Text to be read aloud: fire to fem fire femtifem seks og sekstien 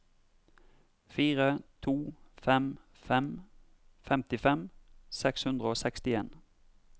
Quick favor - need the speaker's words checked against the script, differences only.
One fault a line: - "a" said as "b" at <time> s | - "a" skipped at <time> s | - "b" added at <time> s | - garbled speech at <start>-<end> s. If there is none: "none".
- "fire" said as "fem" at 2.9 s
- "hundre" added at 5.4 s